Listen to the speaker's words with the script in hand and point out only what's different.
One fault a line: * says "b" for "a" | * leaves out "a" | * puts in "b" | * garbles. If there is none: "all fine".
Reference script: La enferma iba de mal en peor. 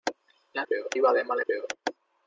* says "peor" for "enferma"
* leaves out "en"